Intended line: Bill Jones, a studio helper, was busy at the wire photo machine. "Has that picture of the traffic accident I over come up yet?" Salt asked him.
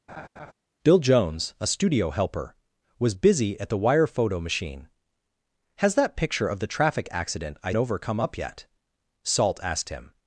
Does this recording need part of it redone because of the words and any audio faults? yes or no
yes